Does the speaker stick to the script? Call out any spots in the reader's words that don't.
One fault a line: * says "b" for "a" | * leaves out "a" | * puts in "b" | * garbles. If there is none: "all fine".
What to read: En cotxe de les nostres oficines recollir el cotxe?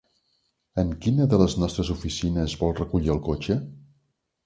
* says "quina" for "cotxe"
* puts in "vol"